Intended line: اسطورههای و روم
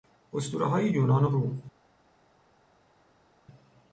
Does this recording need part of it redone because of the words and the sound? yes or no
yes